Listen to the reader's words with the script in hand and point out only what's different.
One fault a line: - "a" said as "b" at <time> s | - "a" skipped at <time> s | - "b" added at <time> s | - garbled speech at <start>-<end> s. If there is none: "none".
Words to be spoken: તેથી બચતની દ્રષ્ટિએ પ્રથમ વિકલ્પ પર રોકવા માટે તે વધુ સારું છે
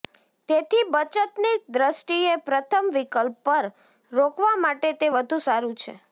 none